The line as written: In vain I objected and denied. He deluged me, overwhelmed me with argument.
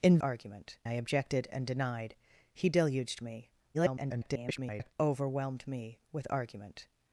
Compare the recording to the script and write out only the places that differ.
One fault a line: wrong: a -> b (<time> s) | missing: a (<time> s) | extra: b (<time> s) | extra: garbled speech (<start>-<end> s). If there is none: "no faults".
wrong: vain -> argument (0.2 s)
extra: garbled speech (3.7-4.9 s)